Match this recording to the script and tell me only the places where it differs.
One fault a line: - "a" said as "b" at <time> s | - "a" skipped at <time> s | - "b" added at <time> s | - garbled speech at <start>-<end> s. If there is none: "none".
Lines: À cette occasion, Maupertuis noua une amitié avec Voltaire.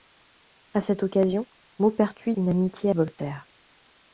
- "noua" skipped at 2.3 s
- "avec" skipped at 2.9 s